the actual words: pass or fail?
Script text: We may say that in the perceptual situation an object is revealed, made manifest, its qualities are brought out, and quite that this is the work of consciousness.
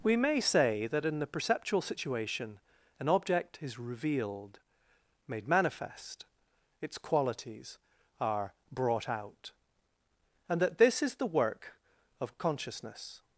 fail